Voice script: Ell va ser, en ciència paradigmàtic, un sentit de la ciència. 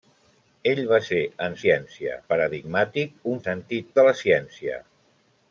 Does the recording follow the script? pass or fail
pass